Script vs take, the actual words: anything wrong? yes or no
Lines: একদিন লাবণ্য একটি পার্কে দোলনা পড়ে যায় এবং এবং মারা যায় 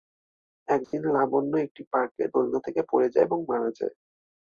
yes